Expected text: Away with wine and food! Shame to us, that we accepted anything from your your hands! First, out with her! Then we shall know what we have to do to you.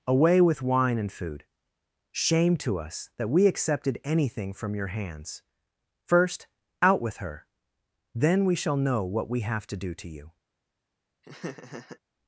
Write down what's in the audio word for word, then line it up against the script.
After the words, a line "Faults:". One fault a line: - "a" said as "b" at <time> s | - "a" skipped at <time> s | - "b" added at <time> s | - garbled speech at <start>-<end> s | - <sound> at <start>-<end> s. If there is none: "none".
Away with wine and food! Shame to us, that we accepted anything from your hands! First, out with her! Then we shall know what we have to do to you.
Faults:
- "your" skipped at 4.9 s
- laugh at 11.2-12.0 s